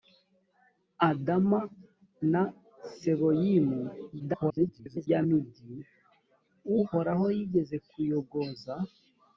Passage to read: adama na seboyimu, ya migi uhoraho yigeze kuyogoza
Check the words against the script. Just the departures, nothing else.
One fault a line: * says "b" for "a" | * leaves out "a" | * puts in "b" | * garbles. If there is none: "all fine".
* garbles